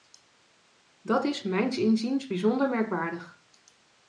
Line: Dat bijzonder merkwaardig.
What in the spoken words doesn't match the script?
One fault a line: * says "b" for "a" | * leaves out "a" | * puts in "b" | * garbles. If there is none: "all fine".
* puts in "is mijns inziens"